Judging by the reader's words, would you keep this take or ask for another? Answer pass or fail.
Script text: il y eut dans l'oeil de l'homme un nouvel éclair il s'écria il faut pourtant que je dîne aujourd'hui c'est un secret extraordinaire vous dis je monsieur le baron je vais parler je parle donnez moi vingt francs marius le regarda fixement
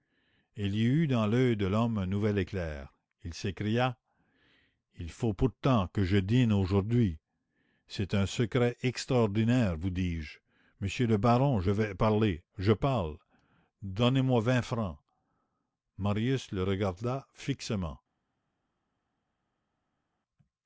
pass